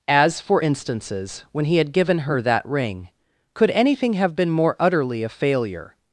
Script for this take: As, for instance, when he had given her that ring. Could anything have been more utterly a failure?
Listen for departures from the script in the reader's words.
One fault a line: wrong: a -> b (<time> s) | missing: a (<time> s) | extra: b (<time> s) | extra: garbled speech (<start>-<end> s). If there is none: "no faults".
wrong: instance -> instances (0.6 s)